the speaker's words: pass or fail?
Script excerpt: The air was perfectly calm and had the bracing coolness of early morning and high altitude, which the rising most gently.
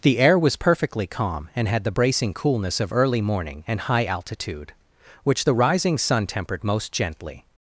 fail